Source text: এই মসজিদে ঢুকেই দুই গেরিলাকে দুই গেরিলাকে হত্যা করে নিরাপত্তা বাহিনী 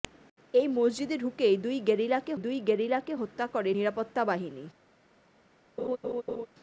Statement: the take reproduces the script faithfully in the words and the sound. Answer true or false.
false